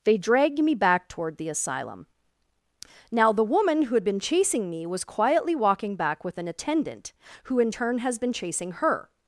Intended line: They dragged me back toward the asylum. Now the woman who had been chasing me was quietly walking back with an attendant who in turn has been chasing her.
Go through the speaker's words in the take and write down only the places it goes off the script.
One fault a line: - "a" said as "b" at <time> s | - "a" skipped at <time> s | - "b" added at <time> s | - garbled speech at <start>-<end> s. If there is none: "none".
none